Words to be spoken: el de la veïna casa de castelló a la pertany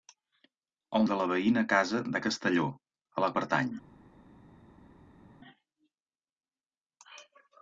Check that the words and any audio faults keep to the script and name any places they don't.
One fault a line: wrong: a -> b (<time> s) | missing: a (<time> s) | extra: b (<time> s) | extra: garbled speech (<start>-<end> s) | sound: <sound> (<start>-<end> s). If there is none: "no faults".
no faults